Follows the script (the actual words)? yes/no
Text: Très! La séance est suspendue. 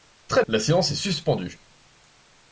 yes